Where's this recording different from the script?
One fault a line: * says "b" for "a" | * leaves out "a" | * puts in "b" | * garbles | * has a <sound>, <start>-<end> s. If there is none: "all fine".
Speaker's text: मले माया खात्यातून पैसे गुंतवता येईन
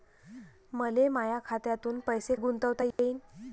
* has a dropout, 2.9-3.0 s